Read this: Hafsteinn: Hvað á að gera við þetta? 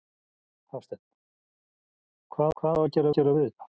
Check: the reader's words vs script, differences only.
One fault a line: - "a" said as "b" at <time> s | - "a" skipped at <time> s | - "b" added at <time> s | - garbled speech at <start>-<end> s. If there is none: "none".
- "Hvað" added at 2.6 s
- "gera" added at 3.2 s